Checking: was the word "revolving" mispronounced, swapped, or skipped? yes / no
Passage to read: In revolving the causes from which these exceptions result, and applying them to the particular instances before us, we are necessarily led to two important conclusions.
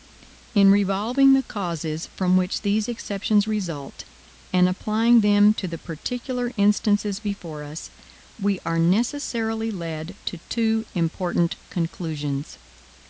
no